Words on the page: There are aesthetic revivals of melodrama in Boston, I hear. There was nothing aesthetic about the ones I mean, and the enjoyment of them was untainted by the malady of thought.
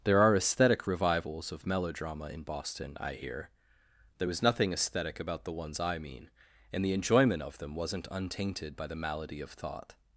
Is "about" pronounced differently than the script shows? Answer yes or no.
no